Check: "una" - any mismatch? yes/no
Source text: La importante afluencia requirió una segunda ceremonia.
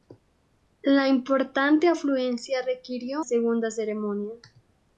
yes